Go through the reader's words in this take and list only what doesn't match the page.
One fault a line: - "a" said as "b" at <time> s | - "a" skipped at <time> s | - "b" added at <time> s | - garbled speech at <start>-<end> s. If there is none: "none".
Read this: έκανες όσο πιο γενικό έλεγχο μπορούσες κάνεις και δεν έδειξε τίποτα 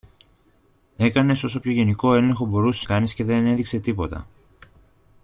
none